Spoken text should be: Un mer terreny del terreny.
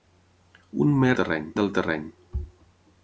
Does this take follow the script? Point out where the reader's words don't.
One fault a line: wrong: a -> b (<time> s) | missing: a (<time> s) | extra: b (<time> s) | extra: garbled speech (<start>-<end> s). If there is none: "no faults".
no faults